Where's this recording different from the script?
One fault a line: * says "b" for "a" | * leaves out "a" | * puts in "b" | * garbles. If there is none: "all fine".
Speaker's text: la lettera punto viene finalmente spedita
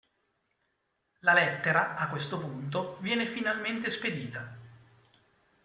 * puts in "a questo"